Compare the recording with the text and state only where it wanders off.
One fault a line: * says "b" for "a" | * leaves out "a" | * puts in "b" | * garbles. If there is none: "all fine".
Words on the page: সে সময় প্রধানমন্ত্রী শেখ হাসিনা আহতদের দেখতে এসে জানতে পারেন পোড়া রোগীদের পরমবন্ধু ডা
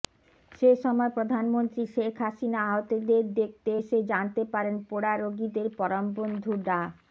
all fine